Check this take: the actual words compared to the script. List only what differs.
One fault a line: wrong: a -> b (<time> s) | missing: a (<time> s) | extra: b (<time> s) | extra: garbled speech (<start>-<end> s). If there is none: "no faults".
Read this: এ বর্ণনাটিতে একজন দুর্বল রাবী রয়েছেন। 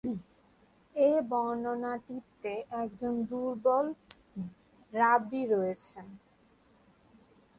no faults